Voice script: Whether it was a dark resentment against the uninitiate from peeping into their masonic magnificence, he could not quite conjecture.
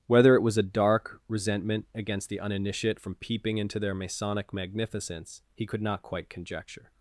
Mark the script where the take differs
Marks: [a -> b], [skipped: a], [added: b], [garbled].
Whether it was a dark resentment against the uninitiate from peeping into their masonic magnificence, he could not quite conjecture.